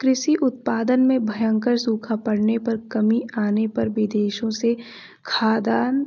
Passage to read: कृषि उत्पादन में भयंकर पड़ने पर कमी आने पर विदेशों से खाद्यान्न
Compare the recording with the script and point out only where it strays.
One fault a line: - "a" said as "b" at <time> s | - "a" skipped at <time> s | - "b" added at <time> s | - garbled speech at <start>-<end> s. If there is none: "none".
- "सूखा" added at 1.8 s